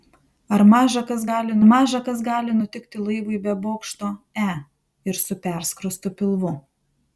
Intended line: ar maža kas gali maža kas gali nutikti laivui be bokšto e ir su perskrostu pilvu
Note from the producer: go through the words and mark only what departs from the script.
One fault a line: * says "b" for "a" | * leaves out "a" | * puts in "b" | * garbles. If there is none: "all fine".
all fine